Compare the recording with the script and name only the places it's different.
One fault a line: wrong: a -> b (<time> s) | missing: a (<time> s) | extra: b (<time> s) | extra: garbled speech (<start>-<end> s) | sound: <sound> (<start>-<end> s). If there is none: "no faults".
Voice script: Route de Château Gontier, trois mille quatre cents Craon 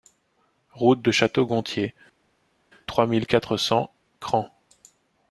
no faults